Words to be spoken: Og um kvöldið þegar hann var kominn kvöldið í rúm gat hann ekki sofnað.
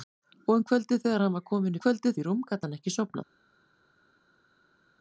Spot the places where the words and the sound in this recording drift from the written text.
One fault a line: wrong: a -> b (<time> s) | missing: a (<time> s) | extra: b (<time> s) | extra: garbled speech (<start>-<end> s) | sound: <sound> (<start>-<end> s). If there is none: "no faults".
no faults